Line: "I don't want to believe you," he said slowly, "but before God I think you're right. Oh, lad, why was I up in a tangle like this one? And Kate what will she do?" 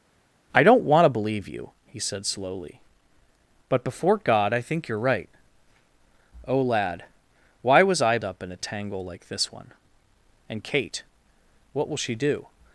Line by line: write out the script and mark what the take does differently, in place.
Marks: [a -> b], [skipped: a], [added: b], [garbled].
"I don't want to believe you," he said slowly, "but before God I think you're right. Oh, lad, why was I up in a tangle like this one? And Kate what will she do?"